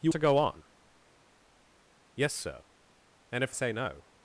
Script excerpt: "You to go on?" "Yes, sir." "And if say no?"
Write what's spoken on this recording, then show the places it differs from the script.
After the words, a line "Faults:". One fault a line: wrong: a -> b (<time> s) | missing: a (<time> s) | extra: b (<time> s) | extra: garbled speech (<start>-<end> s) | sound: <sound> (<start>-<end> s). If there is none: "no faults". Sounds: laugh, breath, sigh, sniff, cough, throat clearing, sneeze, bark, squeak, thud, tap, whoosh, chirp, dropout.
"You to go on?" "Yes, sir." "And if say no?"
Faults:
no faults